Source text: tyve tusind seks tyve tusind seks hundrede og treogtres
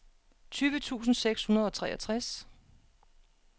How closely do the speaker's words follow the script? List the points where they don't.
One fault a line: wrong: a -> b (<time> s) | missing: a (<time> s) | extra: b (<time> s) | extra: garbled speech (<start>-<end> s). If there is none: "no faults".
missing: tyve tusind seks (1.4 s)